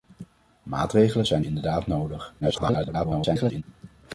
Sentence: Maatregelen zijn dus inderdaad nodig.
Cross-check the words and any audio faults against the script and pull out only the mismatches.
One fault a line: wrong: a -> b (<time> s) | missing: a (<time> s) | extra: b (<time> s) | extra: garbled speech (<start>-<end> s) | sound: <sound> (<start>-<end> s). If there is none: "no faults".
missing: dus (1.4 s)
extra: garbled speech (2.4-3.6 s)